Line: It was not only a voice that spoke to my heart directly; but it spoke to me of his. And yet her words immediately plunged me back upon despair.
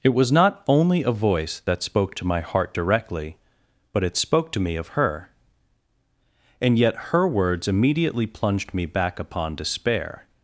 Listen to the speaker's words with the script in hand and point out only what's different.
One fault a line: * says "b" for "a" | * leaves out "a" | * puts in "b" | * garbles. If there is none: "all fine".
* says "her" for "his"